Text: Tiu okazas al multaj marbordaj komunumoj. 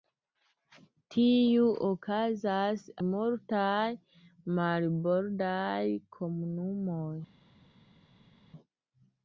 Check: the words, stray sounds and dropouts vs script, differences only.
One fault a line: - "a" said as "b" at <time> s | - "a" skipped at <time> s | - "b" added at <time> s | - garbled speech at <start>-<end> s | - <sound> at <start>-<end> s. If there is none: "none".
- "al" skipped at 2.9 s